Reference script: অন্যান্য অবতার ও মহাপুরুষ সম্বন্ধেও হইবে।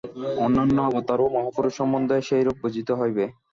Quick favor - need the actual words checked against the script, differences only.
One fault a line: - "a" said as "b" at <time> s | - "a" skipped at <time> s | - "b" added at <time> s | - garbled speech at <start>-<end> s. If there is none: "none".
- "সেইরূপ বুঝিতে" added at 2.3 s